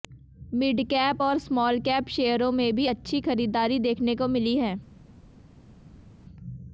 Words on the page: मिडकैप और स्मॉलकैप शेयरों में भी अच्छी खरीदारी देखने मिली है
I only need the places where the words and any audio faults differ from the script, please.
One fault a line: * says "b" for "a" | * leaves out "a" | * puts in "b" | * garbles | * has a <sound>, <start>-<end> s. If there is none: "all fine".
* puts in "को"